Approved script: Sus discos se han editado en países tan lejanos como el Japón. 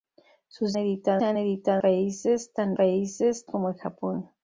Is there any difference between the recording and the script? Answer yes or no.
yes